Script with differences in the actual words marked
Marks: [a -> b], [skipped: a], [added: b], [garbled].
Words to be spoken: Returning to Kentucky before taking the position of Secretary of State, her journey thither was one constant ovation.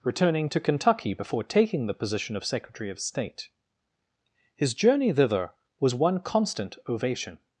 Returning to Kentucky before taking the position of Secretary of State, [her -> his] journey thither was one constant ovation.